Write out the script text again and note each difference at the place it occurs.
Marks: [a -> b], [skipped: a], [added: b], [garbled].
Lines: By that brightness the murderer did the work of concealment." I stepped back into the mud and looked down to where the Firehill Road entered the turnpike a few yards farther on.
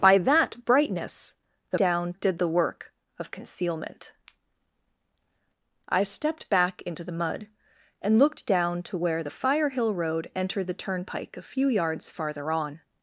By that brightness the [murderer -> down] did the work of concealment." I stepped back into the mud and looked down to where the Firehill Road entered the turnpike a few yards farther on.